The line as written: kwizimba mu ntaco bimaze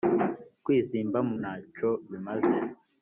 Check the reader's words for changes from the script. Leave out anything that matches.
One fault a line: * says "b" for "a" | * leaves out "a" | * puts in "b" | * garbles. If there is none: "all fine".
all fine